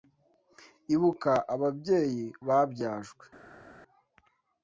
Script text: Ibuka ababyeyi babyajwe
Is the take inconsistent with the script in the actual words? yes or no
no